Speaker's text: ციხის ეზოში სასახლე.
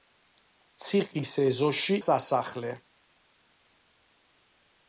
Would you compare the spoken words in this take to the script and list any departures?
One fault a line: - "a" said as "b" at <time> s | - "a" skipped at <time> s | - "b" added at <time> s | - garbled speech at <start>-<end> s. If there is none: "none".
none